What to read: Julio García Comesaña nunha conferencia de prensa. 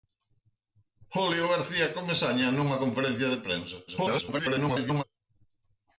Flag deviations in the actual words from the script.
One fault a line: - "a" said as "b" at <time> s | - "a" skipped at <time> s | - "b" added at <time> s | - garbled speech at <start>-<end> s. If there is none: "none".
- garbled speech at 3.9-5.0 s